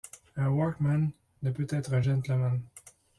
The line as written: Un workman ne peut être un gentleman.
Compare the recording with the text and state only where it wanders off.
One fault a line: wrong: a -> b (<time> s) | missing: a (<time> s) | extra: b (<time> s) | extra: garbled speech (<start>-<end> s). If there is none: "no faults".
no faults